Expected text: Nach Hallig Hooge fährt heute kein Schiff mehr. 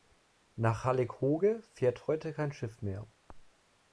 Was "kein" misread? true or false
false